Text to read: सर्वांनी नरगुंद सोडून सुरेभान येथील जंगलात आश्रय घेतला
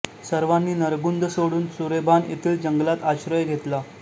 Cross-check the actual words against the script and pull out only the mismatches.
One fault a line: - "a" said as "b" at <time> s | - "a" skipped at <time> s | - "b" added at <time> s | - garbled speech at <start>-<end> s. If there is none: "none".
none